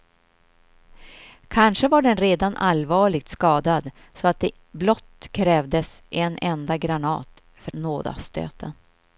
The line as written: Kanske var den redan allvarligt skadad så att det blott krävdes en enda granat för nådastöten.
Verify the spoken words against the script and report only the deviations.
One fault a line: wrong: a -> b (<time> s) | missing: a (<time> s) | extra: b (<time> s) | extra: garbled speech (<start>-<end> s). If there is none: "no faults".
no faults